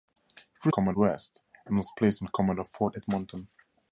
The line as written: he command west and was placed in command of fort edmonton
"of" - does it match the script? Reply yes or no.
yes